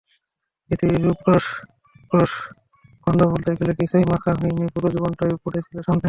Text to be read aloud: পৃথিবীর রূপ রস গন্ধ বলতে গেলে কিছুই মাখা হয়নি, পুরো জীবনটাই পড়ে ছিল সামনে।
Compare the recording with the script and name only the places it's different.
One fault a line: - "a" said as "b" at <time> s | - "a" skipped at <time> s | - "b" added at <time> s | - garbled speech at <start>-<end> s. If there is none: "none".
- "রস" added at 2.1 s